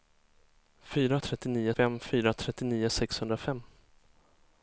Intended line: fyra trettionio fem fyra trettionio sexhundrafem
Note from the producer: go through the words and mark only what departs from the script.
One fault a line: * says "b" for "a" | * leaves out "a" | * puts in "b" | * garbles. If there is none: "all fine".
all fine